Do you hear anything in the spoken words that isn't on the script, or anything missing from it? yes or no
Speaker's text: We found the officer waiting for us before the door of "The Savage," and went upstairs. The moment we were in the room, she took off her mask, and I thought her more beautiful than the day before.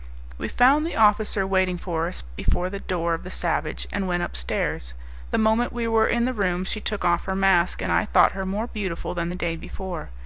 no